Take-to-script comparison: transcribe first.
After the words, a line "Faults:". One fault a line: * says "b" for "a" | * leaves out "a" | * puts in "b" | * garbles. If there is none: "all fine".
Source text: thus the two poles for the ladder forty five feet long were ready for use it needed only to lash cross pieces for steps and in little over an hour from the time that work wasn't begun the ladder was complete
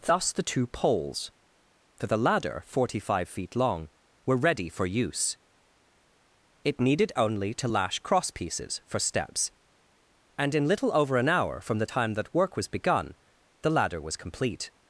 thus the two poles for the ladder forty five feet long were ready for use it needed only to lash cross pieces for steps and in little over an hour from the time that work was begun the ladder was complete
Faults:
* says "was" for "wasn't"